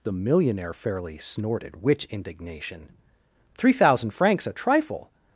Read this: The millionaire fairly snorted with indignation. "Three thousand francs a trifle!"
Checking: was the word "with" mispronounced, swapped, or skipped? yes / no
yes